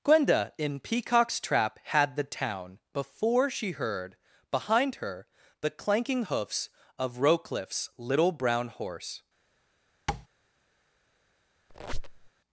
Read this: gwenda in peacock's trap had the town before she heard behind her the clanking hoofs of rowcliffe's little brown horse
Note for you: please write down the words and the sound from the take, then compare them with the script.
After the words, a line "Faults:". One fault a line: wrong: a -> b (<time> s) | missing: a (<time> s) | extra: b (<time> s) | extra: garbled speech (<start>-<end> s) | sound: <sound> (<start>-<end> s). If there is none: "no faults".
gwenda in peacock's trap had the town before she heard behind her the clanking hoofs of rowcliffe's little brown horse
Faults:
sound: tap (10.1-10.3 s)
sound: squeak (11.7-12.3 s)